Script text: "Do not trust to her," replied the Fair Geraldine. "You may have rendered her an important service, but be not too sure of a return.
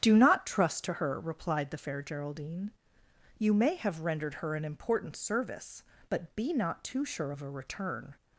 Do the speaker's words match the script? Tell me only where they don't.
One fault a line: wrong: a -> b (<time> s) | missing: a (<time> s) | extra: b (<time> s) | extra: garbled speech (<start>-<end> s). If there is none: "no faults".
no faults